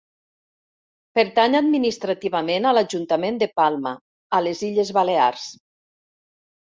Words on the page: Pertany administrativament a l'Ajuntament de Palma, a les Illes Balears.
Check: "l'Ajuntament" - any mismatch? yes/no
no